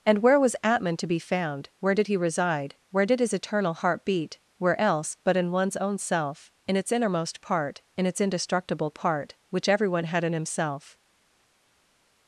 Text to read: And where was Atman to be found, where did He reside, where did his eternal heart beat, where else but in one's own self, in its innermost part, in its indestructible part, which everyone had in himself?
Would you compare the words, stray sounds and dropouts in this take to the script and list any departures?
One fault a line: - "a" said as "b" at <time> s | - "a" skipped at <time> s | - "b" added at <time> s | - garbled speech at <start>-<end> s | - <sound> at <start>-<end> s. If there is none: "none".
none